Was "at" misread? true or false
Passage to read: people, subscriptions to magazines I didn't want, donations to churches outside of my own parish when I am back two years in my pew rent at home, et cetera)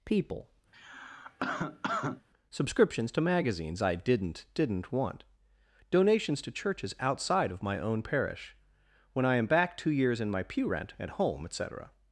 false